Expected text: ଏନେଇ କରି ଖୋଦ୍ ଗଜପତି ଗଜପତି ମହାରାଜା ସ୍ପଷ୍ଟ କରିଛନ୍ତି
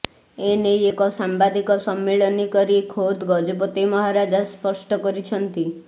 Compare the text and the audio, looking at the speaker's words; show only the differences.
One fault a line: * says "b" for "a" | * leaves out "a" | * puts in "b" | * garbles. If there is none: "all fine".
* puts in "ଏକ ସାମ୍ବାଦିକ ସମ୍ମିଳନୀ"
* leaves out "ଗଜପତି"